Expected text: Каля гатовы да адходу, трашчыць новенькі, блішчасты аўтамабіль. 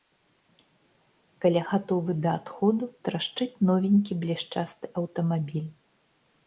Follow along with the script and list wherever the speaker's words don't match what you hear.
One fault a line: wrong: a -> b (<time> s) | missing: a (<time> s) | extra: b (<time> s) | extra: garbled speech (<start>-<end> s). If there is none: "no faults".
no faults